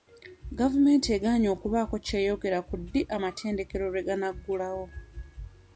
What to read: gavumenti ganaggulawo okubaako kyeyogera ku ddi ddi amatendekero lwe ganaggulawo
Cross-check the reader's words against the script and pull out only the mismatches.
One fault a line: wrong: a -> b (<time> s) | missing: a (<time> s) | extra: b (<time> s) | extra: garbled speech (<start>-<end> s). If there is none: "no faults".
wrong: ganaggulawo -> egaanye (1.2 s)
missing: ddi (3.0 s)